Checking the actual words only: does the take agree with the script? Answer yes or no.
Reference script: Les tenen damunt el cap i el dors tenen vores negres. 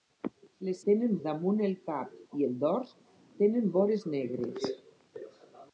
yes